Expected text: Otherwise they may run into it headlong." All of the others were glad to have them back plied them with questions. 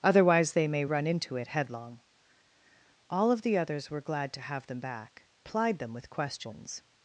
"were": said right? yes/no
yes